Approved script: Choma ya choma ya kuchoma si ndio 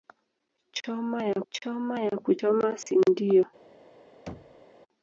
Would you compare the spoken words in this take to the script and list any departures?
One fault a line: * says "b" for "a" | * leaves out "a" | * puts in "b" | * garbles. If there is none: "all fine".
all fine